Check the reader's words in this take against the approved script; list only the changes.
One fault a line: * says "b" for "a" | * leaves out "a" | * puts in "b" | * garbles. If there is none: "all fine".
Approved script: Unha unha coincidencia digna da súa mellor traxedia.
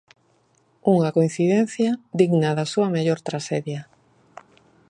* leaves out "unha"